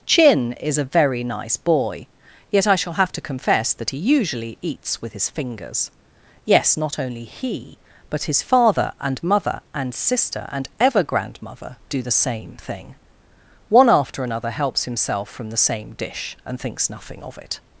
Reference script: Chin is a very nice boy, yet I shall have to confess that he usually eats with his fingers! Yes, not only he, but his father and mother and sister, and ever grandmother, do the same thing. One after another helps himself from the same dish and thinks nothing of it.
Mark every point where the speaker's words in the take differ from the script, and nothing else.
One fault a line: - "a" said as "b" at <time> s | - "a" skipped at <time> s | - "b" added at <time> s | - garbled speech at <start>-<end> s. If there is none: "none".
none